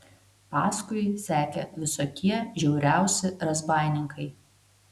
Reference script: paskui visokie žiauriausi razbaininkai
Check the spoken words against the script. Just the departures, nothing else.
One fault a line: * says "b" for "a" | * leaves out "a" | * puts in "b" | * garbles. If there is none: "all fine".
* puts in "sekė"